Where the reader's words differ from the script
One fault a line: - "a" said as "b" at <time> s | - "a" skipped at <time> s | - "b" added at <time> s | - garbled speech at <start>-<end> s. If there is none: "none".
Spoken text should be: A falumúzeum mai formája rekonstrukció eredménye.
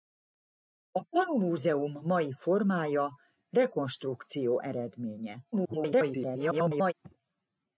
- garbled speech at 5.5-6.9 s